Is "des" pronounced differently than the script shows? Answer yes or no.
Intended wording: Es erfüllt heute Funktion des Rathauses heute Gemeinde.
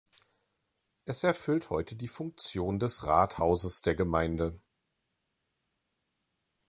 no